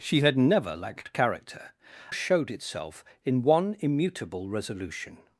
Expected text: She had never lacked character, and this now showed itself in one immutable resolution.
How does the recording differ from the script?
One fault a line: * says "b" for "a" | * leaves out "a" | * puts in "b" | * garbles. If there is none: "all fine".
* leaves out "and this now"